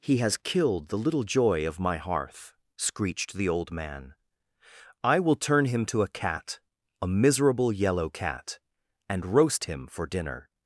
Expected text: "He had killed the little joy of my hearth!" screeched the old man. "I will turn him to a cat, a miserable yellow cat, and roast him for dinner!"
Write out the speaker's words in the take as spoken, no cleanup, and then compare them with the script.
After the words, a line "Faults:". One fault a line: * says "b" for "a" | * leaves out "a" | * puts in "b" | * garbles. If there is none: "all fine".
"He has killed the little joy of my hearth!" screeched the old man. "I will turn him to a cat, a miserable yellow cat, and roast him for dinner!"
Faults:
* says "has" for "had"